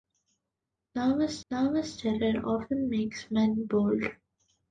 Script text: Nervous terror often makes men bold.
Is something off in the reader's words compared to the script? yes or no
yes